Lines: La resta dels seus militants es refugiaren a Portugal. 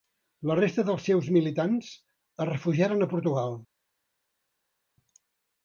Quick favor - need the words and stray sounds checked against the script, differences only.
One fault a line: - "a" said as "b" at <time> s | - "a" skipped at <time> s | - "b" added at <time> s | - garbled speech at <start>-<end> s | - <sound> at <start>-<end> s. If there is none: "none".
none